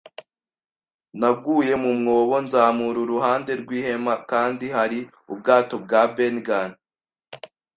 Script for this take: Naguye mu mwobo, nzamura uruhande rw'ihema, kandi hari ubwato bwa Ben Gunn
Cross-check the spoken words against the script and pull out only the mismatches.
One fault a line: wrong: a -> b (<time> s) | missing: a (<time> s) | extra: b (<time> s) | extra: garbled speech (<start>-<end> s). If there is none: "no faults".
no faults